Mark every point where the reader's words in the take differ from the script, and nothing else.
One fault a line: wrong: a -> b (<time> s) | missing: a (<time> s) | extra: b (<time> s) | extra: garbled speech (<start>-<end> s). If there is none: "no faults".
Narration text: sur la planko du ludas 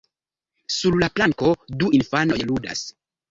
extra: infanoj (2.0 s)